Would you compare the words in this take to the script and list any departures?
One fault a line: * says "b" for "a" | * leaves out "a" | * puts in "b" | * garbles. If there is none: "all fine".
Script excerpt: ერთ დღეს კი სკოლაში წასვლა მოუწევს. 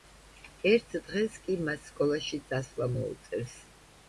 * puts in "მას"